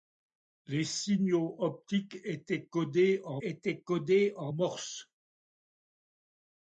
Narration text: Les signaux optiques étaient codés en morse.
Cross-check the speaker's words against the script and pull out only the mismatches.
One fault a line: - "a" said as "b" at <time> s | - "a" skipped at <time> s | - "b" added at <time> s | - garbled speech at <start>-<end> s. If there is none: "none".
- "étaient codés en" added at 3.4 s